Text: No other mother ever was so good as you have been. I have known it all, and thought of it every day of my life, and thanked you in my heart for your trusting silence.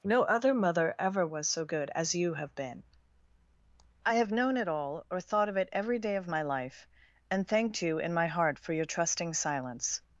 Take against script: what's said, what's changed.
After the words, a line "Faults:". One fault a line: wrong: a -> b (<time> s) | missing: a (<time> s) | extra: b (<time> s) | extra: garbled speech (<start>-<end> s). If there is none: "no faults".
No other mother ever was so good as you have been. I have known it all, or thought of it every day of my life, and thanked you in my heart for your trusting silence.
Faults:
wrong: and -> or (5.1 s)